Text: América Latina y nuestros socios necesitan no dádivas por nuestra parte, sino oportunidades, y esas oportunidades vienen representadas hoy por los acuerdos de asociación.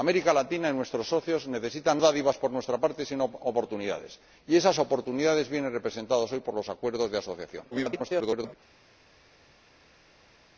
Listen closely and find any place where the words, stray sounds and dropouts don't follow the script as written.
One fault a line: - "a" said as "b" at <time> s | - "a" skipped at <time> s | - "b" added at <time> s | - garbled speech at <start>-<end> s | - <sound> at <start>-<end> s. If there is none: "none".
- "no" skipped at 2.0 s
- garbled speech at 7.7-8.5 s